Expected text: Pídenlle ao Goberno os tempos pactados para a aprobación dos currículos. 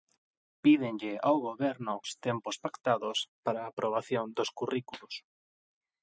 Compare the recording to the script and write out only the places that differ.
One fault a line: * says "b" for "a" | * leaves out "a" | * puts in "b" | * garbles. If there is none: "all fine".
all fine